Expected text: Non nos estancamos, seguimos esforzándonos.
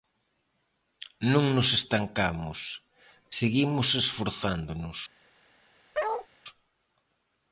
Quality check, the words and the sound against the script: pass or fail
fail